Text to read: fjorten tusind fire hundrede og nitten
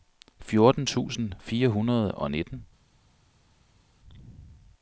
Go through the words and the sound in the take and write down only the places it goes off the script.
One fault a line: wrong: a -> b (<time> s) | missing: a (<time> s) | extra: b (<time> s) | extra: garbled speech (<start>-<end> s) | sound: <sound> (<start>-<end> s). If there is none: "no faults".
no faults